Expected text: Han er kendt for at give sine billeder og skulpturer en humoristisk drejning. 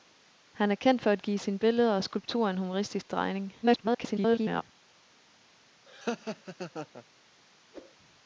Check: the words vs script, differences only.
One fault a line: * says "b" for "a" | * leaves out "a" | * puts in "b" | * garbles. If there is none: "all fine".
* garbles